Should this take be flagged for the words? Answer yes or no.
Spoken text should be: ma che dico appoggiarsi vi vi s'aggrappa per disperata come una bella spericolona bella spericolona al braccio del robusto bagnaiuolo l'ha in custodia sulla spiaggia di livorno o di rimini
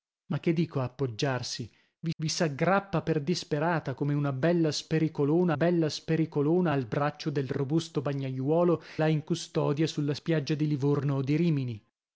no